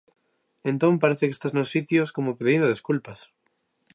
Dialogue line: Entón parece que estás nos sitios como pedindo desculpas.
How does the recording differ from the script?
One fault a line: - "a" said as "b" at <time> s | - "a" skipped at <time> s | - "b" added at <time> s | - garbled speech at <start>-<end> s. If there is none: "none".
none